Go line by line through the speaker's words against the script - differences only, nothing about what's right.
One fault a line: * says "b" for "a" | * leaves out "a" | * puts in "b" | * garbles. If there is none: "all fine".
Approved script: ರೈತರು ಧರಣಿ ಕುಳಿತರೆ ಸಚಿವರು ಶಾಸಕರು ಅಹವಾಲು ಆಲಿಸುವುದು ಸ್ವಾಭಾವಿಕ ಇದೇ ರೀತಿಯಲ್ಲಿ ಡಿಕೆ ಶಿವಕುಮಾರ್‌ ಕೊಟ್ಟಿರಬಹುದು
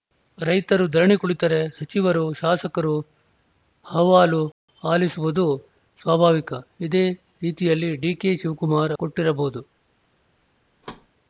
all fine